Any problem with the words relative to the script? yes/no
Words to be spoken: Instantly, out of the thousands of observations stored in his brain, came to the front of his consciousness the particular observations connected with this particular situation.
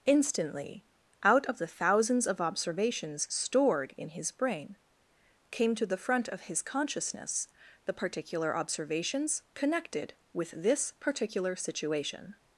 no